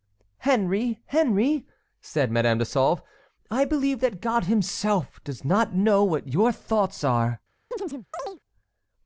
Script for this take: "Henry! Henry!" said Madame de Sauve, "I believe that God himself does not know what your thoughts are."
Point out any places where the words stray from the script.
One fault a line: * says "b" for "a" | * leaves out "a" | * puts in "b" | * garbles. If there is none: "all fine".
all fine